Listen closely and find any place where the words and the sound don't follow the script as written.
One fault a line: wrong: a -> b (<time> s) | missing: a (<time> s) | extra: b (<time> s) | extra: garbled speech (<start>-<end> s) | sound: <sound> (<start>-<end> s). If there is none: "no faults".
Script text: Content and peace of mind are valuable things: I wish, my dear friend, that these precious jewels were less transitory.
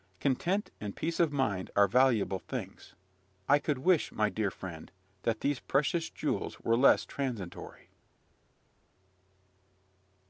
extra: could (3.6 s)